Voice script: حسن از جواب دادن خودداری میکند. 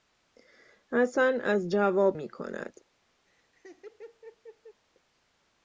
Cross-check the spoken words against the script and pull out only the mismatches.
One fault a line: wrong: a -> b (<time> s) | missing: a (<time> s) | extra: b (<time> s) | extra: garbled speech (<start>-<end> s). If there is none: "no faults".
missing: دادن خودداری (2.2 s)